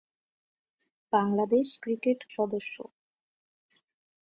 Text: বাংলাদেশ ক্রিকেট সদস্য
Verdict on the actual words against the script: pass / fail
pass